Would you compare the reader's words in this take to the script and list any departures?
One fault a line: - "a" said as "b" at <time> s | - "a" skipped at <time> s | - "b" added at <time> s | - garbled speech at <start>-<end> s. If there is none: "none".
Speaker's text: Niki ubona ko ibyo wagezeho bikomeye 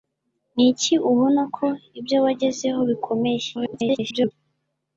- garbled speech at 3.5-4.3 s